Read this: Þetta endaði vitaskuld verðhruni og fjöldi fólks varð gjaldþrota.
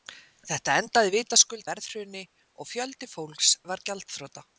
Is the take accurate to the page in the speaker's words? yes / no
yes